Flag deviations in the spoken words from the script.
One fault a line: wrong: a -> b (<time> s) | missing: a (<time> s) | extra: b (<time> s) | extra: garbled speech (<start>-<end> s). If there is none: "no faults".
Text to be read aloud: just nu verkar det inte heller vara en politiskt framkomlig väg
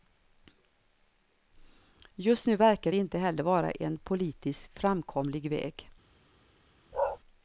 no faults